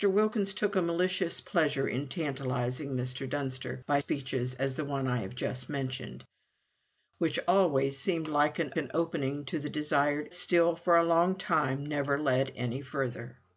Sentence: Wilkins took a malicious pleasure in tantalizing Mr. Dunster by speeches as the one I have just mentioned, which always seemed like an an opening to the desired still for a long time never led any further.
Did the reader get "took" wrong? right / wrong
right